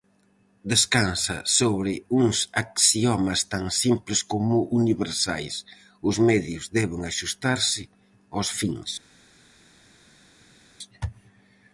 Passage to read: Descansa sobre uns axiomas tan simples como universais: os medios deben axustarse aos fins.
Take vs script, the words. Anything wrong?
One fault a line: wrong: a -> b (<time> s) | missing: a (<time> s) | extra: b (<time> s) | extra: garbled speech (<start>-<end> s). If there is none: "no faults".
no faults